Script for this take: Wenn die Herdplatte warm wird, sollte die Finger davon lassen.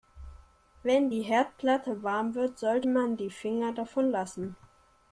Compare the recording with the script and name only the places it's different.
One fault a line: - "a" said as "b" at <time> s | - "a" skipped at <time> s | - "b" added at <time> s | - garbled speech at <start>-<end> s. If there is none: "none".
- "man" added at 2.8 s